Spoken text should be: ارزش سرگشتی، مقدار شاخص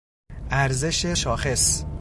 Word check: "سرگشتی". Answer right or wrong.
wrong